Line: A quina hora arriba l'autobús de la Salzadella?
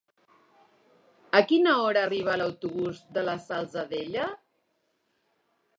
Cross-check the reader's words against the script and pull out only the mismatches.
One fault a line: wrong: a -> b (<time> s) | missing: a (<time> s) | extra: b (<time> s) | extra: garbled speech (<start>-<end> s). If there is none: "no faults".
no faults